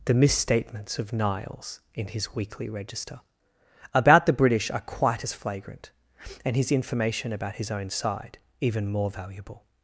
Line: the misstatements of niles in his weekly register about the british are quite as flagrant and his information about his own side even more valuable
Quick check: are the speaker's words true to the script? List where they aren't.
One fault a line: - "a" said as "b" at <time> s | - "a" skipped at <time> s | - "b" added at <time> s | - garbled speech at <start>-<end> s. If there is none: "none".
none